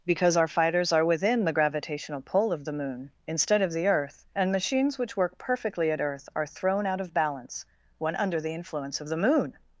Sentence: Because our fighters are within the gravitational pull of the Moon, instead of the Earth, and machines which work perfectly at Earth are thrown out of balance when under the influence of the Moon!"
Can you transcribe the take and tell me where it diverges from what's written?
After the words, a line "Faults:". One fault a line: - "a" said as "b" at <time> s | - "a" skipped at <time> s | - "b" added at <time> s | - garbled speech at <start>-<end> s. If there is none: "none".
Because our fighters are within the gravitational pull of the Moon, instead of the Earth, and machines which work perfectly at Earth are thrown out of balance when under the influence of the Moon!"
Faults:
none